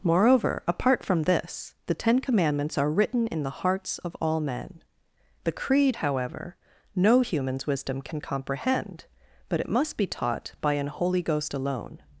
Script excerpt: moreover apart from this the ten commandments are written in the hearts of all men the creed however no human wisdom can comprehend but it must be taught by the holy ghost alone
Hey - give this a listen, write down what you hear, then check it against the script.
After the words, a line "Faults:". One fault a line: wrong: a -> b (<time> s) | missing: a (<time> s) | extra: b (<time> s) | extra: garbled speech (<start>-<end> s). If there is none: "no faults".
moreover apart from this the ten commandments are written in the hearts of all men the creed however no humans wisdom can comprehend but it must be taught by an holy ghost alone
Faults:
wrong: human -> humans (7.2 s)
wrong: the -> an (10.7 s)